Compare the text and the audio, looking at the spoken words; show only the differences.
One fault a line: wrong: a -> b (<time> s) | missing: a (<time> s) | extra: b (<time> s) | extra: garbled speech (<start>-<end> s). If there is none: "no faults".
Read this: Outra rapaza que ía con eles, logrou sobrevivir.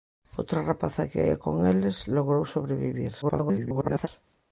extra: garbled speech (3.2-4.1 s)